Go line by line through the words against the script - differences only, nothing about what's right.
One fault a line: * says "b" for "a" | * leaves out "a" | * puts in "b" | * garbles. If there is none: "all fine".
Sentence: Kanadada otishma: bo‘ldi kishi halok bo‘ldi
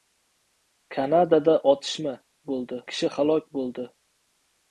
all fine